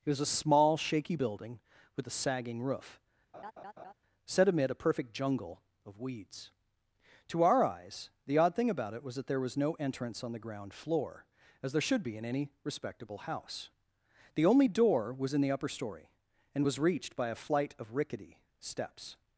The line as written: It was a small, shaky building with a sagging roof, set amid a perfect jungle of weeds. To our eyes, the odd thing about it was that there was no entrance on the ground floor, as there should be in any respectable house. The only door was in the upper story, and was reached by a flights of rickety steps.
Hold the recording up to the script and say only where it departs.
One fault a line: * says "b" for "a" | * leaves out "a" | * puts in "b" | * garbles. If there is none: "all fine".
* says "flight" for "flights"